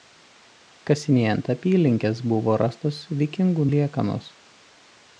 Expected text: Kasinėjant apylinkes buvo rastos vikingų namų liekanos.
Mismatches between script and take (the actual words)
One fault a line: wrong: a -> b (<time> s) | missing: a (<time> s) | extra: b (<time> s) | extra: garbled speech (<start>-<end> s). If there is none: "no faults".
missing: namų (3.7 s)